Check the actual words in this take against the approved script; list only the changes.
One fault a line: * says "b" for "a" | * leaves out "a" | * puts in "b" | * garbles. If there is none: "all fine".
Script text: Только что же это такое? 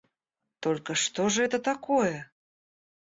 all fine